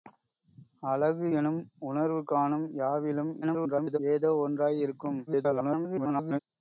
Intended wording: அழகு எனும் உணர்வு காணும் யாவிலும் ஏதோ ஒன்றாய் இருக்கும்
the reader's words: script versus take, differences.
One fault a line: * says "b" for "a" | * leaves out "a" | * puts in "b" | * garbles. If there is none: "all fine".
* garbles
* garbles